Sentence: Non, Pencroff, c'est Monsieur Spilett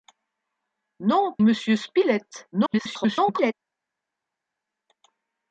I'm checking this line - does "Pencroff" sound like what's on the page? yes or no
no